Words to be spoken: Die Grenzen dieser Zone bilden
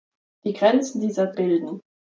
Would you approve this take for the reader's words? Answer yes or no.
no